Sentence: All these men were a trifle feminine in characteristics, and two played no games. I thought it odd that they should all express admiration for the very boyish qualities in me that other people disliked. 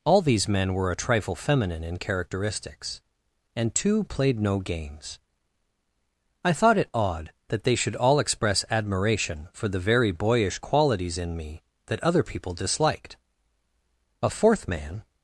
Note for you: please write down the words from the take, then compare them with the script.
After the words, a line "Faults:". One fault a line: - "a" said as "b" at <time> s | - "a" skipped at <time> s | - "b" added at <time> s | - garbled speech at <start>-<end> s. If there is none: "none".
All these men were a trifle feminine in characteristics, and two played no games. I thought it odd that they should all express admiration for the very boyish qualities in me that other people disliked. A fourth man
Faults:
- "A fourth man" added at 14.2 s